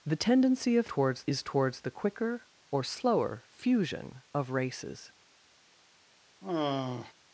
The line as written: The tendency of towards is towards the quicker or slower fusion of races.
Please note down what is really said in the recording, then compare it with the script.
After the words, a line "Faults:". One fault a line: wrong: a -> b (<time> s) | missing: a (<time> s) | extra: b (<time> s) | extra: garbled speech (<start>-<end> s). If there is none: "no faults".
The tendency of towards is towards the quicker or slower fusion of races.
Faults:
no faults